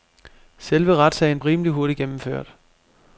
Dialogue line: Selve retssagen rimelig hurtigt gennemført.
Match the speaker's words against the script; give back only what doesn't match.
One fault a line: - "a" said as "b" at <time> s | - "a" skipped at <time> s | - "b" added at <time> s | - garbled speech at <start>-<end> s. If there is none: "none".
none